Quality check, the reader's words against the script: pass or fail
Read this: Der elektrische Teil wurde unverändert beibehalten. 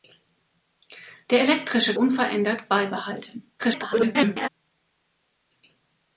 fail